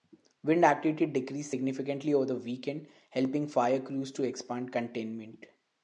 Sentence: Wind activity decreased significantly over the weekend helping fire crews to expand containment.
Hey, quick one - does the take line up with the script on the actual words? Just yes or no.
yes